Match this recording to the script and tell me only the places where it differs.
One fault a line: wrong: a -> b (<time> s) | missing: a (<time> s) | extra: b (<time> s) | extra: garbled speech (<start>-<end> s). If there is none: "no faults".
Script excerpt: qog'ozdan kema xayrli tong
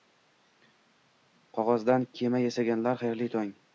extra: yasaganlar (2.5 s)